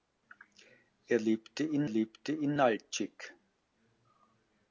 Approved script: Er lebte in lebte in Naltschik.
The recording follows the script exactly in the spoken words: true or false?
true